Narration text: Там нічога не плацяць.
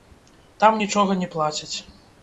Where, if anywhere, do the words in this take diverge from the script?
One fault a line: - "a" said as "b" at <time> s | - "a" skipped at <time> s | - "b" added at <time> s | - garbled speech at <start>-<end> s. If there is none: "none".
none